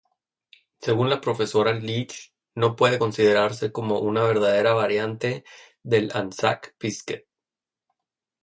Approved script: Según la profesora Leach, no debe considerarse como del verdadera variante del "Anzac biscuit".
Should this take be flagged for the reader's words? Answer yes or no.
yes